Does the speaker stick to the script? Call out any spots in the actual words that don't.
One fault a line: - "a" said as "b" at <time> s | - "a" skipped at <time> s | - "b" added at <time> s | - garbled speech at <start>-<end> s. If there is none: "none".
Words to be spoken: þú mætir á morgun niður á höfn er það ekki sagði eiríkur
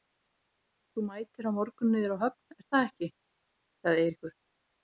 none